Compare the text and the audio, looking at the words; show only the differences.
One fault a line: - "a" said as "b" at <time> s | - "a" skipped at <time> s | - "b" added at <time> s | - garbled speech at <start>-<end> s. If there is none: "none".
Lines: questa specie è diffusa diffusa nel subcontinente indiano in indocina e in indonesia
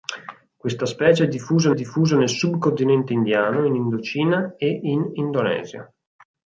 none